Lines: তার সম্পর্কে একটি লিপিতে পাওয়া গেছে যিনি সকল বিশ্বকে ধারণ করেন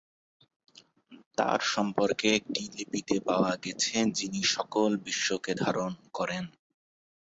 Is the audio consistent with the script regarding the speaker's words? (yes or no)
yes